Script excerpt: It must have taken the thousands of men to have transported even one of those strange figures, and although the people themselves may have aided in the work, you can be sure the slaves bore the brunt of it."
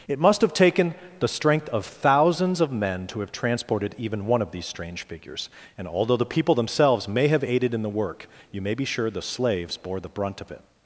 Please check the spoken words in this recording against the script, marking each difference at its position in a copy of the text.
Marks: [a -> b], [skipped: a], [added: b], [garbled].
It must have taken the [added: strength of] thousands of men to have transported even one of [those -> these] strange figures, and although the people themselves may have aided in the work, you [can -> may] be sure the slaves bore the brunt of it."